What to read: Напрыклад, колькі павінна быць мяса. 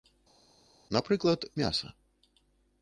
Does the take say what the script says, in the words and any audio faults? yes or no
no